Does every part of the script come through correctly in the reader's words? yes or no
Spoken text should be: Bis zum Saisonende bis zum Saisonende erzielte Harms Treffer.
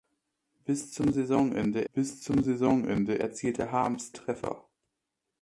yes